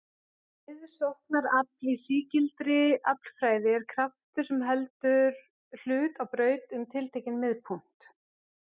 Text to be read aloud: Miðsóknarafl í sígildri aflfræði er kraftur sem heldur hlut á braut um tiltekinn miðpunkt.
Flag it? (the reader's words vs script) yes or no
no